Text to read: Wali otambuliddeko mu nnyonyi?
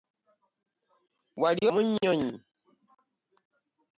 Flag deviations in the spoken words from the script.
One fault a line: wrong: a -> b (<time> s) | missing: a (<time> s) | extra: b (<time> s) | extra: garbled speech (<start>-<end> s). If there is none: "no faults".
missing: otambuliddeko (1.6 s)